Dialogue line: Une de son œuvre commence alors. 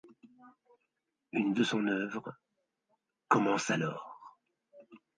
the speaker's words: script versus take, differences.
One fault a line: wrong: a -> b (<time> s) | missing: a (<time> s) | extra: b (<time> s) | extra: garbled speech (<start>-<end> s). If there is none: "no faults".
no faults